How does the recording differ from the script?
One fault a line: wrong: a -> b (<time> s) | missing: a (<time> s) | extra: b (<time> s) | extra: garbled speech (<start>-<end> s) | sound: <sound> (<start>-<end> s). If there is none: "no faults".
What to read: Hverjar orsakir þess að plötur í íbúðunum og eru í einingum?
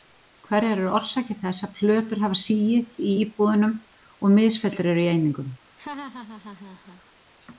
extra: eru (0.8 s)
extra: hafa sigið (2.3 s)
extra: misfellur (4.4 s)
sound: laugh (5.8-7.0 s)